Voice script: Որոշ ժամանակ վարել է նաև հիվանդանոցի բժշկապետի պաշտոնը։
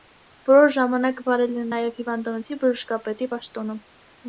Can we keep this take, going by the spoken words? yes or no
yes